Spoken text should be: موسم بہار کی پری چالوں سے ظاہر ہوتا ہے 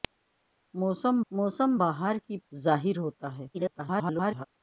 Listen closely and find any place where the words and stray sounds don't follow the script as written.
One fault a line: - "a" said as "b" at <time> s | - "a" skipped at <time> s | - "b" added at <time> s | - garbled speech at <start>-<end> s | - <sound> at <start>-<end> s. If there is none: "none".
- "موسم" added at 1.3 s
- "پری چالوں سے" skipped at 2.4 s
- garbled speech at 3.5-4.5 s